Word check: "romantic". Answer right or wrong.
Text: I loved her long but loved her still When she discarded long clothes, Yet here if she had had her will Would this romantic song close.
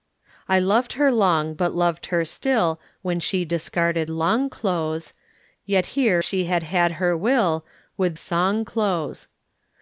wrong